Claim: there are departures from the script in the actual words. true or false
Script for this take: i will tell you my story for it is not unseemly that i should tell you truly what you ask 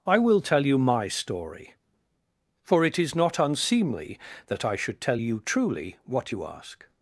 false